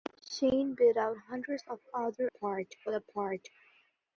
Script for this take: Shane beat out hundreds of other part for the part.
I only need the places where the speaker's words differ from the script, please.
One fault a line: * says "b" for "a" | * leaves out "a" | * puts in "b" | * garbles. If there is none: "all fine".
all fine